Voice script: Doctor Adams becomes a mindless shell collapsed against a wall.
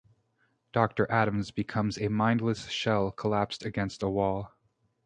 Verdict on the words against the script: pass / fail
pass